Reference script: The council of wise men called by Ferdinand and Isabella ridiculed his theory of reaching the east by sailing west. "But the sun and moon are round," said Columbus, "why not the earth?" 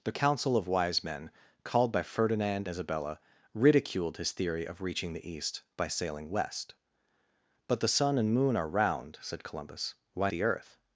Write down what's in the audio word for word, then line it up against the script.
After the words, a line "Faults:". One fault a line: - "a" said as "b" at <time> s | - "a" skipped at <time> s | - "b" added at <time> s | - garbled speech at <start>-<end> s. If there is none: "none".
The council of wise men called by Ferdinand Isabella ridiculed his theory of reaching the east by sailing west. "But the sun and moon are round," said Columbus, "why the earth?"
Faults:
- "and" skipped at 2.7 s
- "not" skipped at 10.3 s